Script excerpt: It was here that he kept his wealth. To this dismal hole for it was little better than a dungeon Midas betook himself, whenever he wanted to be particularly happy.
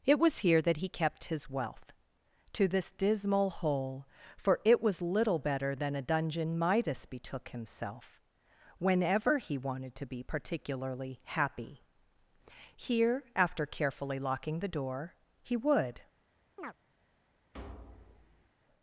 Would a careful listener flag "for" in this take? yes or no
no